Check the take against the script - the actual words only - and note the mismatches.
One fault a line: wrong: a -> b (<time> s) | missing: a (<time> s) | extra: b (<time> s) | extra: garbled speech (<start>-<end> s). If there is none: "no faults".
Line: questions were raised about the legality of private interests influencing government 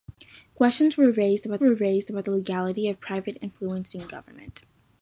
extra: were raised about (1.6 s)
missing: interests (3.4 s)